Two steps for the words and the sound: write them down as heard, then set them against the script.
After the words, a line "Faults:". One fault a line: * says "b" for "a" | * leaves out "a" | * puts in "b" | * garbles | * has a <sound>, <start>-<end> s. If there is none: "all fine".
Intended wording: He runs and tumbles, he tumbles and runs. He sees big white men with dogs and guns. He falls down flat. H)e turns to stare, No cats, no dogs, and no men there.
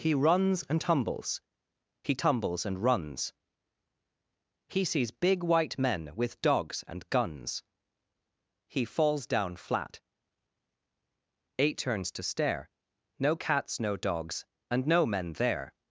He runs and tumbles, he tumbles and runs. He sees big white men with dogs and guns. He falls down flat. Eight turns to stare, No cats, no dogs, and no men there.
Faults:
* says "Eight" for "H)e"